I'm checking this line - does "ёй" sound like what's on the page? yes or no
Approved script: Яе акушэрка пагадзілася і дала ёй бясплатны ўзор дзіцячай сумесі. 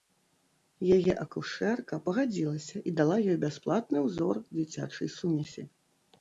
yes